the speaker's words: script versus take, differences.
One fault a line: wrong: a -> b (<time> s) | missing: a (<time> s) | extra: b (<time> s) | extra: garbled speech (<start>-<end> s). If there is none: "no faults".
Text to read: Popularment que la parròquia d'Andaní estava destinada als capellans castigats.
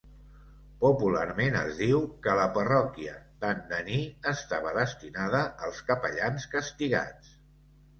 extra: es diu (1.6 s)